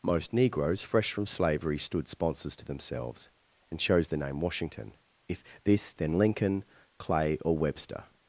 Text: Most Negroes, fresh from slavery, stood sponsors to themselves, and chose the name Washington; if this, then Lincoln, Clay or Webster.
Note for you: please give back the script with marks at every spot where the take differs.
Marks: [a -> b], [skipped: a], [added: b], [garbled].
Most Negroes, fresh from slavery, stood sponsors to themselves, and chose the name Washington; if this, then Lincoln, Clay or Webster.